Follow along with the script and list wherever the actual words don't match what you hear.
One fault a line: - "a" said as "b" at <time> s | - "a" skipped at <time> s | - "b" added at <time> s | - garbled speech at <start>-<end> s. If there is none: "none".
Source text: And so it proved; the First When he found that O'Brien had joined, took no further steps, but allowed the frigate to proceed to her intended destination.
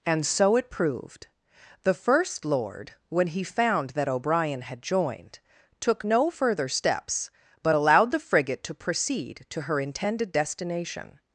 - "Lord" added at 2.4 s